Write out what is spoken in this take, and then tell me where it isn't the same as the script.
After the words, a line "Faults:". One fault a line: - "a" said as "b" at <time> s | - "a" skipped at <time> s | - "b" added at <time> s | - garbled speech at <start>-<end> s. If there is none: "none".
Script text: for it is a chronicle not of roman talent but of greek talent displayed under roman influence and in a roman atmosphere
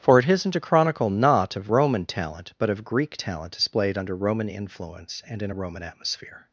for it isn't a chronicle not of roman talent but of greek talent displayed under roman influence and in a roman atmosphere
Faults:
- "is" said as "isn't" at 0.3 s